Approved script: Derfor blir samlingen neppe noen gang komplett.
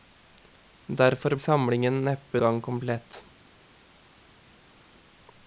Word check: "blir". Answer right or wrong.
wrong